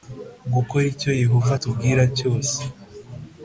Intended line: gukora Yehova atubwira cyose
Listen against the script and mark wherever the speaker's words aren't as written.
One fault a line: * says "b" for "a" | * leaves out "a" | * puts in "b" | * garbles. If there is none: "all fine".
* puts in "icyo"